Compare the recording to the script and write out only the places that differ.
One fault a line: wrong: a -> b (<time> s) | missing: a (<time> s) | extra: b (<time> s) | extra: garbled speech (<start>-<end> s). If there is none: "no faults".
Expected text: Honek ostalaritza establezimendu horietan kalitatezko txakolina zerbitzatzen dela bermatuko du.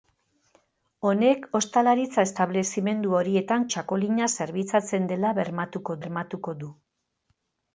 missing: kalitatezko (3.7 s)
extra: bermatuko (6.0 s)